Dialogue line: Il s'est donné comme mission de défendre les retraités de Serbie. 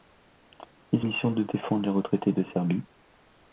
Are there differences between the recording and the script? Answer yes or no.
yes